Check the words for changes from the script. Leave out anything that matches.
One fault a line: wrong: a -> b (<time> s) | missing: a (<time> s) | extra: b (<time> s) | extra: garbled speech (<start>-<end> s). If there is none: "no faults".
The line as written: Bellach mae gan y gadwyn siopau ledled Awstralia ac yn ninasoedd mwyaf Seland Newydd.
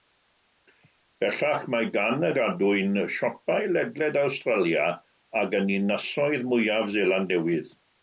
no faults